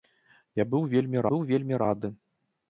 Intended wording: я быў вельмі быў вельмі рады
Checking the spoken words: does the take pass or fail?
pass